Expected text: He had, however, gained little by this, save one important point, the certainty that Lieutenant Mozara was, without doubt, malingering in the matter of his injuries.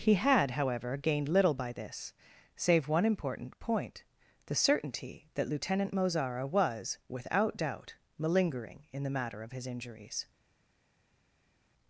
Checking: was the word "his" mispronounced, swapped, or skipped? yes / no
no